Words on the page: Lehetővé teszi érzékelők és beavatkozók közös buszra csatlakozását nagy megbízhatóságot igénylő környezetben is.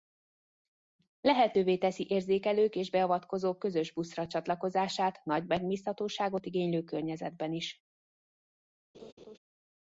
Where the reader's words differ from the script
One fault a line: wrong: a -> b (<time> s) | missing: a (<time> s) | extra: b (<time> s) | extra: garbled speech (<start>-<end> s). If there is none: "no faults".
no faults